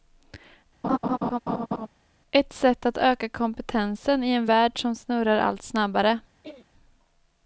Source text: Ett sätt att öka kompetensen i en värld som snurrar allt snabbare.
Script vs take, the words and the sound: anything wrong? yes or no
yes